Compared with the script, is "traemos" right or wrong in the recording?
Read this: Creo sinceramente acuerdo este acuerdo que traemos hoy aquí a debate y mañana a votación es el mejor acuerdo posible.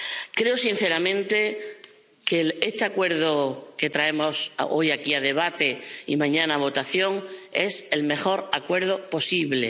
right